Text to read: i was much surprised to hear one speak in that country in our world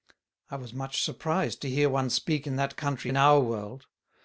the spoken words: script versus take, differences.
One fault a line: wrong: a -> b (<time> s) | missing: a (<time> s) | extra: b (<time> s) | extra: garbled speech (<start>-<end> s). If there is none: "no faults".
no faults